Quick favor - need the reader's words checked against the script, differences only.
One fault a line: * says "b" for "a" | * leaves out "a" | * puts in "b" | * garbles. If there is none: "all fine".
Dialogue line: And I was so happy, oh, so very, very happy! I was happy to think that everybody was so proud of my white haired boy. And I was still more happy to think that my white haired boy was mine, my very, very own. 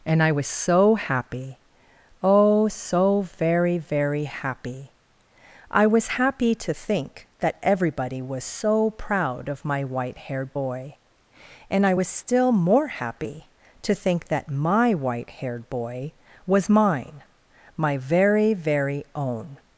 all fine